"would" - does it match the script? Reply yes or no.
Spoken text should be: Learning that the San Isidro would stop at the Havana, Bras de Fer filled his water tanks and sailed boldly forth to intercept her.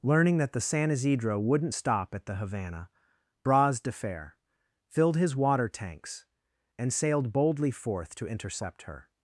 no